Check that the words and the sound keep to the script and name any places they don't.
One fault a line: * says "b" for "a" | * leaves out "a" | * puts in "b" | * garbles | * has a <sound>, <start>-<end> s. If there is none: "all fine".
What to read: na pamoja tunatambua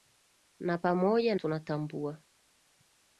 all fine